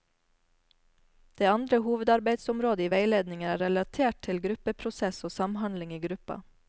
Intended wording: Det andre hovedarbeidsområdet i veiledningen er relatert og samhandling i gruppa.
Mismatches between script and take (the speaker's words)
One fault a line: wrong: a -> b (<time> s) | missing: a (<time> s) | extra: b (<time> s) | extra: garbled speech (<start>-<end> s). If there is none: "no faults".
extra: til gruppeprosess (4.3 s)